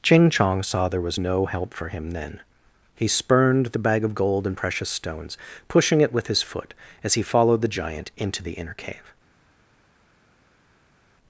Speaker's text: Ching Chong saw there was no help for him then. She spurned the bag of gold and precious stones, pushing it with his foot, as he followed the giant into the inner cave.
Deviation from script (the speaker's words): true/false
true